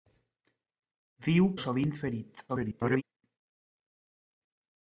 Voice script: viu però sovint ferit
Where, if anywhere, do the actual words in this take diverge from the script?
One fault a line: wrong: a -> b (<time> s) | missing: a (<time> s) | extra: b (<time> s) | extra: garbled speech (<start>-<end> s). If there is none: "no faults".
missing: però (1.5 s)
extra: garbled speech (2.5-3.0 s)